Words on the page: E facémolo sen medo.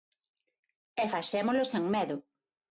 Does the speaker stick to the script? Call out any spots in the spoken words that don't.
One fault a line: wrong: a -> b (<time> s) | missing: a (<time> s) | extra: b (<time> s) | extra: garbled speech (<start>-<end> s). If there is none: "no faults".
no faults